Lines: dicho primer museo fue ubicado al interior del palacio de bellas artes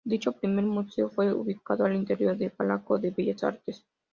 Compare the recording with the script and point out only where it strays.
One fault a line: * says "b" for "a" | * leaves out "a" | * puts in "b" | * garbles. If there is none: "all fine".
all fine